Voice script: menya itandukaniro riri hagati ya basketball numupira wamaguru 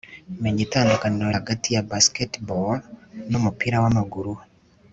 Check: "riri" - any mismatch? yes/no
yes